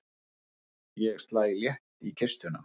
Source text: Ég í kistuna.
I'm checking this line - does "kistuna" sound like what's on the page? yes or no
yes